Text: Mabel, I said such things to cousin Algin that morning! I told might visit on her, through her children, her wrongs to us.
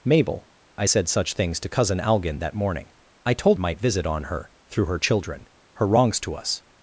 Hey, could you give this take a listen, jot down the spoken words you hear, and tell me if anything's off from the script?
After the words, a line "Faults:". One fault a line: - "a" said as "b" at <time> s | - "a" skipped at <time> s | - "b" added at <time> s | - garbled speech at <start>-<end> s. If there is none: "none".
Mabel, I said such things to cousin Algin that morning! I told might visit on her, through her children, her wrongs to us.
Faults:
none